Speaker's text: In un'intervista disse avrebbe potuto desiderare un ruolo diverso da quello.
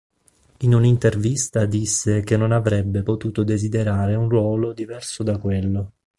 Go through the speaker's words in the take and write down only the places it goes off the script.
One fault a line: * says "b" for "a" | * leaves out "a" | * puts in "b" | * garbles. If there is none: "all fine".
* puts in "che non"